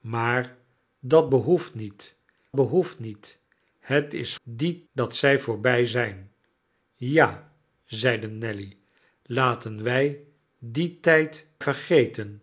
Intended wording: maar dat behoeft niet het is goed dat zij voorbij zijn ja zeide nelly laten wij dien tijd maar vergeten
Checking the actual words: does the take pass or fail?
fail